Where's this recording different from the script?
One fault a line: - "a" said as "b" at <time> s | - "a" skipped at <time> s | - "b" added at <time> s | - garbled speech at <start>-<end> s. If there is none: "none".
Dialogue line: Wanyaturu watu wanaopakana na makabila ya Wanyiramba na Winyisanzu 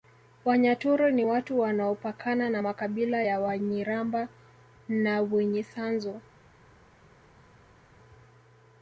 - "ni" added at 1.1 s